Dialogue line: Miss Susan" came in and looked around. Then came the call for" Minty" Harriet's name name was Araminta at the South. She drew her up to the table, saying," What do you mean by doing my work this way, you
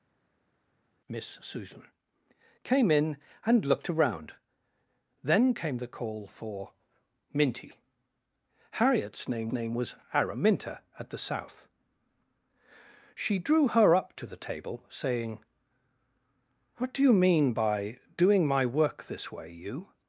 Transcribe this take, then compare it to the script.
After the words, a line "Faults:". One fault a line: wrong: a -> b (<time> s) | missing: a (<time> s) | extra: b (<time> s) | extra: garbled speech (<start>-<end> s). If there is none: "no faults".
Miss Susan" came in and looked around. Then came the call for" Minty" Harriet's name name was Araminta at the South. She drew her up to the table, saying," What do you mean by doing my work this way, you
Faults:
no faults